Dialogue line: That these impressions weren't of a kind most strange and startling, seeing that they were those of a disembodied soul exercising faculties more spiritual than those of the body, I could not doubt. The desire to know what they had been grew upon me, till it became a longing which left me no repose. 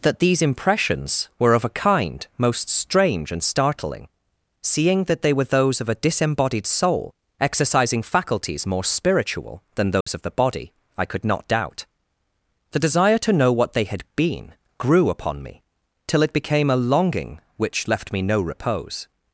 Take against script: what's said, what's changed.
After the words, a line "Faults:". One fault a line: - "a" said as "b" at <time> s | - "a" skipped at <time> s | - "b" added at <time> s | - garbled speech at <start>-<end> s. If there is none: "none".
That these impressions were of a kind most strange and startling, seeing that they were those of a disembodied soul exercising faculties more spiritual than those of the body, I could not doubt. The desire to know what they had been grew upon me, till it became a longing which left me no repose.
Faults:
- "weren't" said as "were" at 1.4 s